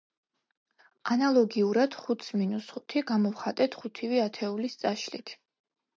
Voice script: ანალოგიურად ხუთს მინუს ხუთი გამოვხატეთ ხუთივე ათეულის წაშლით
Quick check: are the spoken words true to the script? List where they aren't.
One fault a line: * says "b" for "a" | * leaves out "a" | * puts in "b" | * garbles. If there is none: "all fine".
all fine